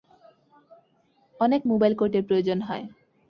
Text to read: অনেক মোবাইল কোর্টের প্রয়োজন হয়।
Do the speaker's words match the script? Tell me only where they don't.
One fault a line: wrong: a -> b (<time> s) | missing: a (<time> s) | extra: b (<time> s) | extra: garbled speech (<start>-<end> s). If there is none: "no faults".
no faults